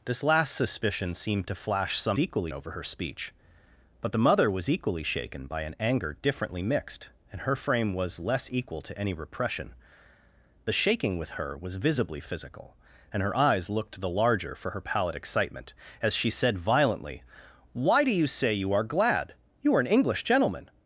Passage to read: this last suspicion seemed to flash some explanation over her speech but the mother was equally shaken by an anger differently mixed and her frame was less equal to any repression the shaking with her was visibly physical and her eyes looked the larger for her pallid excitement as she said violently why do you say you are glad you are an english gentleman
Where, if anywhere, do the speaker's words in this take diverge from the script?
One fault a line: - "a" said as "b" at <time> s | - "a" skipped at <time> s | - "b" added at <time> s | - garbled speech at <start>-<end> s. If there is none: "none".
- "explanation" said as "equally" at 2.2 s